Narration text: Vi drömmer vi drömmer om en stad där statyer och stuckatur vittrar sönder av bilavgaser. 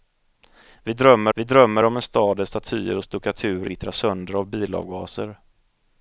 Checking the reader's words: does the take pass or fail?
pass